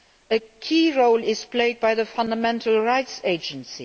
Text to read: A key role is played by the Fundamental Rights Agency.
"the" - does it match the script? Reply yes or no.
yes